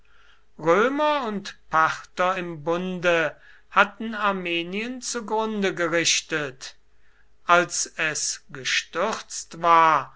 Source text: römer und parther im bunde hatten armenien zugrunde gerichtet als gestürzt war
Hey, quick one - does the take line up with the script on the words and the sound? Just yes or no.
no